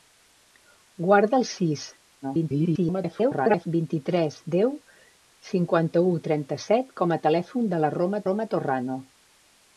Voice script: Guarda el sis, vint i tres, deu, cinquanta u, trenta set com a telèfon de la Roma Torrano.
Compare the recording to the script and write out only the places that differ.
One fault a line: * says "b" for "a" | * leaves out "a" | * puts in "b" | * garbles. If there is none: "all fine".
* garbles
* puts in "Roma"